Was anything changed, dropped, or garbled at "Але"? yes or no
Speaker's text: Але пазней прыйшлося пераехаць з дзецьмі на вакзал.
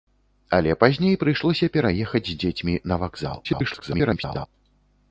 no